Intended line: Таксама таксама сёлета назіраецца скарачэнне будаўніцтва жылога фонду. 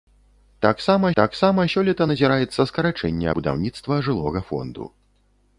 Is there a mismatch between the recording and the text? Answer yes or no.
no